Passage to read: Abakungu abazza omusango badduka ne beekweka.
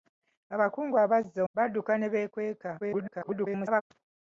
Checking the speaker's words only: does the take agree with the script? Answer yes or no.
no